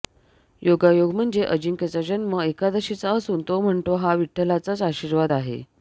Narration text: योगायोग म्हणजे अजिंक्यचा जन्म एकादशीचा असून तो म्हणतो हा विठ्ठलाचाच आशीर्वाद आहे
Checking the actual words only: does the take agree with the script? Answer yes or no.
yes